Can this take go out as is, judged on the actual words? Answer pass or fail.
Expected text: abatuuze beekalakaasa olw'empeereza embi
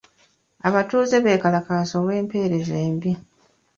pass